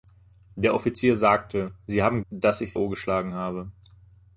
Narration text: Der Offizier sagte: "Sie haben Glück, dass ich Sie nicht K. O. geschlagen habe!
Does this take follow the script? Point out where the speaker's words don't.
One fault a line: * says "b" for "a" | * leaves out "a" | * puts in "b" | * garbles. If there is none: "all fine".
* leaves out "Glück"
* leaves out "Sie nicht K"